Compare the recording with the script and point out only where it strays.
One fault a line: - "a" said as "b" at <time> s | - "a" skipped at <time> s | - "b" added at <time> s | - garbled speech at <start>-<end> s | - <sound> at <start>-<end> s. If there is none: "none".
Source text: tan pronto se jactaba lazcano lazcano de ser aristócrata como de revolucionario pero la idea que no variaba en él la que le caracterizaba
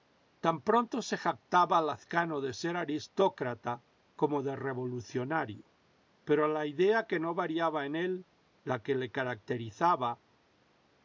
- "lazcano" skipped at 2.4 s